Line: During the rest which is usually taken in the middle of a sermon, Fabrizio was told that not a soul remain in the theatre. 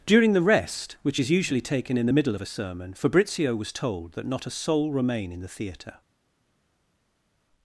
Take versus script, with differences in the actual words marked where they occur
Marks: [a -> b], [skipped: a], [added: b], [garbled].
During the rest which is usually taken in the middle of a sermon, Fabrizio was told that not a soul remain in the theatre.